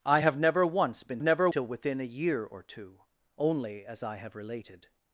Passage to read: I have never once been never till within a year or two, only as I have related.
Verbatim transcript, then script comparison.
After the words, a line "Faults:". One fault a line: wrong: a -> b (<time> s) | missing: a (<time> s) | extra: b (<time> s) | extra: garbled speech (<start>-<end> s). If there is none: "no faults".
I have never once been never till within a year or two, only as I have related.
Faults:
no faults